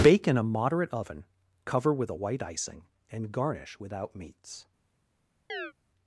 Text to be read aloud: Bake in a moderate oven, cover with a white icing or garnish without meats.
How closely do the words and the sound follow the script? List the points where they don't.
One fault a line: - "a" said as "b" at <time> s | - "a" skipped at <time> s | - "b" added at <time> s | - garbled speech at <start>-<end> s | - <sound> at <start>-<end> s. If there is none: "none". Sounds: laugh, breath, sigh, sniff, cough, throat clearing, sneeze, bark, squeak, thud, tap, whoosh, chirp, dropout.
- "or" said as "and" at 3.1 s
- chirp at 5.5-5.7 s